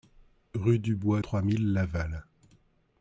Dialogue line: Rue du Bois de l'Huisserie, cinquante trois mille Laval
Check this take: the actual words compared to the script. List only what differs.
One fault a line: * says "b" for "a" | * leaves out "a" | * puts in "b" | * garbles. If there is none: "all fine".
* leaves out "de l'Huisserie cinquante"